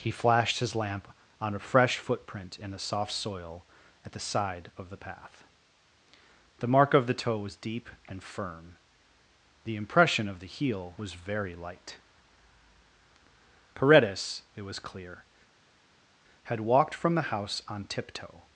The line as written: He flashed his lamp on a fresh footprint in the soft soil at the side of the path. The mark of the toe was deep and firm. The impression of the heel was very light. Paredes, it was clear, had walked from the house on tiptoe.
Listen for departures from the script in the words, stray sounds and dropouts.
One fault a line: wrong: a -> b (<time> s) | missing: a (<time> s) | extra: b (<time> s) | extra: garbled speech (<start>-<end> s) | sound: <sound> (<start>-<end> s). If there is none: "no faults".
no faults